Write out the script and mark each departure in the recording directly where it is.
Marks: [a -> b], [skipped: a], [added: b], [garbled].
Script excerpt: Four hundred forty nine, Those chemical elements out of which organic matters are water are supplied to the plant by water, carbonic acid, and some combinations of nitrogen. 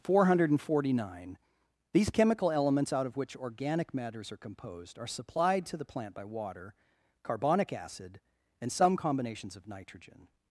Four hundred forty nine, [Those -> These] chemical elements out of which organic matters are [water -> composed] are supplied to the plant by water, carbonic acid, and some combinations of nitrogen.